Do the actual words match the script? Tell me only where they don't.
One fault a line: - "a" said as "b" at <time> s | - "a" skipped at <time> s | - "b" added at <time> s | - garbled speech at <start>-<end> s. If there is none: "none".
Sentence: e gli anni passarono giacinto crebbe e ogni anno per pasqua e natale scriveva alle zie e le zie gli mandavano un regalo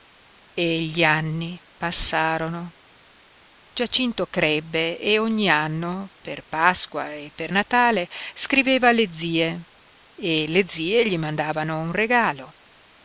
- "per" added at 7.3 s